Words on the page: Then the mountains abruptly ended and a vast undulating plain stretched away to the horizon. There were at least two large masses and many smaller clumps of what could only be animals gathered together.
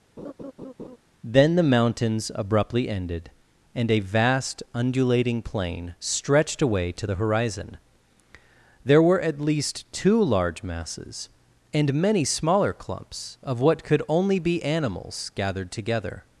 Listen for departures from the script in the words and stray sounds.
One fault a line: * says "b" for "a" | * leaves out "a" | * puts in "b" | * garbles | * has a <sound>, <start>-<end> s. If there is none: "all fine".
* has a laugh, 0.2-1.0 s